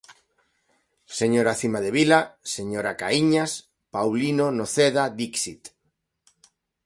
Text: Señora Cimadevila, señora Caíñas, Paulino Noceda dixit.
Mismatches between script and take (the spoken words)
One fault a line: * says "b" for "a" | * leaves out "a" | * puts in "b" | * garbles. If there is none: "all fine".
all fine